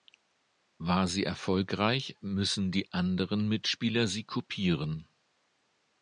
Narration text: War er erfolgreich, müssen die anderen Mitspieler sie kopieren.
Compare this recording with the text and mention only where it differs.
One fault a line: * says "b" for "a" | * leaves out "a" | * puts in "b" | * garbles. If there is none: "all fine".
* says "sie" for "er"